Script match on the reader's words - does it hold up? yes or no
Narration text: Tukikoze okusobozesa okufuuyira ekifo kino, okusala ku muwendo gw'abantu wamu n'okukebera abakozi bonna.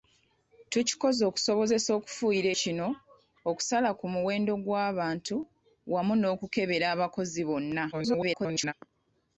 no